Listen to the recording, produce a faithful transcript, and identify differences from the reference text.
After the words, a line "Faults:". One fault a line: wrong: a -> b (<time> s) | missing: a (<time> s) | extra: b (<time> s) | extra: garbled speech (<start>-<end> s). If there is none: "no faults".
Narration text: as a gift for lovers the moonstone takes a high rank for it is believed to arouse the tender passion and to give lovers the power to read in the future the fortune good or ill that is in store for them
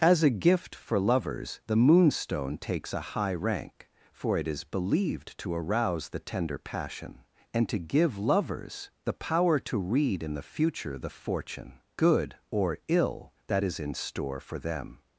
as a gift for lovers the moonstone takes a high rank for it is believed to arouse the tender passion and to give lovers the power to read in the future the fortune good or ill that is in store for them
Faults:
no faults